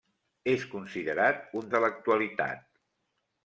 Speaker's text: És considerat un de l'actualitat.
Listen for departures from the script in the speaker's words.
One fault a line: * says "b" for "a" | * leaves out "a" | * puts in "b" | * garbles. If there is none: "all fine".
all fine